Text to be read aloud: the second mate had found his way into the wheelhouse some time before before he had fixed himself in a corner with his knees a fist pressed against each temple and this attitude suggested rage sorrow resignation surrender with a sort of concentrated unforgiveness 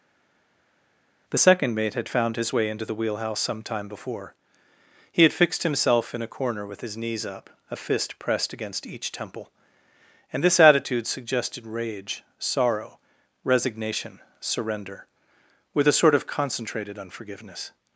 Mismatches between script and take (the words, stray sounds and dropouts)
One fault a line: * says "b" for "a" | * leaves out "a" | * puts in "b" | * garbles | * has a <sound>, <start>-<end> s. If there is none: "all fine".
* leaves out "before"
* puts in "up"